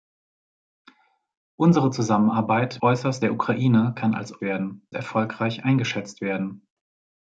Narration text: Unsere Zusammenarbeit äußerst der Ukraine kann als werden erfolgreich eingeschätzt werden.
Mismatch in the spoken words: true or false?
false